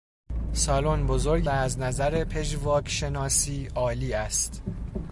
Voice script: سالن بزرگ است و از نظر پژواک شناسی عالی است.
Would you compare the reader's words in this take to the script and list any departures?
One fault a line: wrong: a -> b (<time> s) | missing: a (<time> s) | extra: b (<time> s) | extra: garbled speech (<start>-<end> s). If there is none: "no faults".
missing: است (1.5 s)